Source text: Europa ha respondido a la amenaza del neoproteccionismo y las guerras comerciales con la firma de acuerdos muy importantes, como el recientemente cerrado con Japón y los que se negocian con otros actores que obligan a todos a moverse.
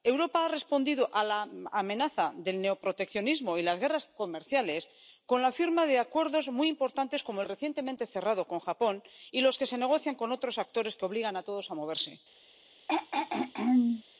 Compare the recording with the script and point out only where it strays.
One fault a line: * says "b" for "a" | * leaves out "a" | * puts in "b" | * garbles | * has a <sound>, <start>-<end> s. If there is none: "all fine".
* has a throat clearing, 12.9-14.0 s